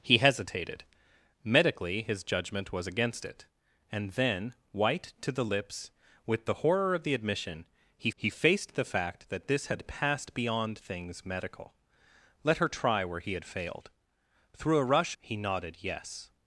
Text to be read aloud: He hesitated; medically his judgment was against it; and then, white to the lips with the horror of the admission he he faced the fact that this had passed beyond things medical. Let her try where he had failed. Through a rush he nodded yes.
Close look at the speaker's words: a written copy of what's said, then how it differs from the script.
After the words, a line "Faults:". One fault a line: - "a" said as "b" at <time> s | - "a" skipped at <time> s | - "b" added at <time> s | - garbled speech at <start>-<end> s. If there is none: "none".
He hesitated; medically his judgment was against it; and then, white to the lips with the horror of the admission he he faced the fact that this had passed beyond things medical. Let her try where he had failed. Through a rush he nodded yes.
Faults:
none